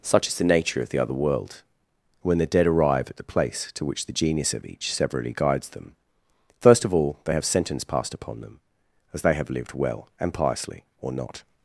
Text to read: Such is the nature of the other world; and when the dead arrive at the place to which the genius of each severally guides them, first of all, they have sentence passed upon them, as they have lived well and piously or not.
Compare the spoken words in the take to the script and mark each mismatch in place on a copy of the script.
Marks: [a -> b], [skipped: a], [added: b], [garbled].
Such is the nature of the other world; [skipped: and] when the dead arrive at the place to which the genius of each severally guides them, first of all, they have sentence passed upon them, as they have lived well and piously or not.